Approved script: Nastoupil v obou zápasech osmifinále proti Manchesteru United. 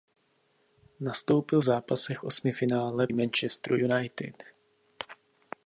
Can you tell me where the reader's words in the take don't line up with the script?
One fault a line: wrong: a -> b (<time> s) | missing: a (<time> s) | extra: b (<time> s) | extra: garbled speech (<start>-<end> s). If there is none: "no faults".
missing: v obou (1.6 s)
missing: proti (3.1 s)